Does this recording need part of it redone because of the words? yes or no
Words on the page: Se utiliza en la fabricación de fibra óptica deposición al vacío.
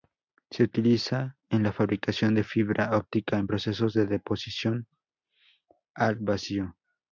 yes